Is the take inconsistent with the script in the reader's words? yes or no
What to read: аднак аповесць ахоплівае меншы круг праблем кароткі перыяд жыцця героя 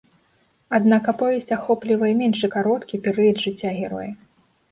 yes